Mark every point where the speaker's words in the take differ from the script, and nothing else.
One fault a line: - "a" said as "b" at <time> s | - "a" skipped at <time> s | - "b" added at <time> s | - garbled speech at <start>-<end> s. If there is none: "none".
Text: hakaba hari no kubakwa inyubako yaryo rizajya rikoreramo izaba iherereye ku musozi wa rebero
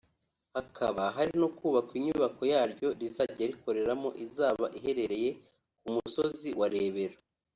none